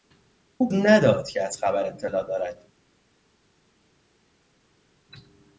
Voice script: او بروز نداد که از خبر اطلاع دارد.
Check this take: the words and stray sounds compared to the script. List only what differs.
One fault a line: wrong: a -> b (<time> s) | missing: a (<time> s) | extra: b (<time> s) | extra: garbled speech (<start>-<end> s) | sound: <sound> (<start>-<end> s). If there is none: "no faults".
missing: بروز (0.7 s)